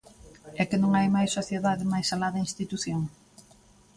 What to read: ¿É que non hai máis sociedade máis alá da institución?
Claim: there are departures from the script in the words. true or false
false